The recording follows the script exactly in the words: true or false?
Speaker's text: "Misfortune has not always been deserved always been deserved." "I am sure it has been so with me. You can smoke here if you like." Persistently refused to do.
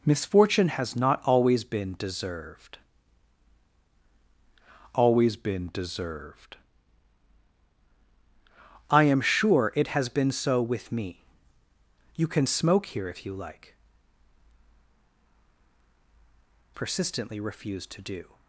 true